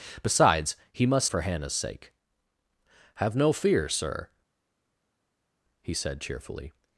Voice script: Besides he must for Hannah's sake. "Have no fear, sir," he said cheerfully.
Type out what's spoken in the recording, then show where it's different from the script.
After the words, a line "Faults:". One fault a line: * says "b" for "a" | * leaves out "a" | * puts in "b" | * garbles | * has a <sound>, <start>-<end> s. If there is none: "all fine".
Besides he must for Hannah's sake. "Have no fear, sir," he said cheerfully.
Faults:
all fine